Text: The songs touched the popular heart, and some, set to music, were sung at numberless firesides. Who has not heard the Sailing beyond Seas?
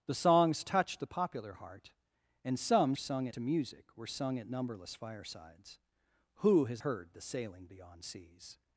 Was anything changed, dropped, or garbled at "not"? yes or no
yes